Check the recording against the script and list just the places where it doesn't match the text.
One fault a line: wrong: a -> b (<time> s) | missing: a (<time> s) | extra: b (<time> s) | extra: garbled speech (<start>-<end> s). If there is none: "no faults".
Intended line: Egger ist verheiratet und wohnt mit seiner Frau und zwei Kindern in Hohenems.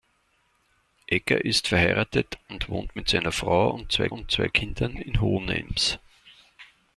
extra: und zwei (4.1 s)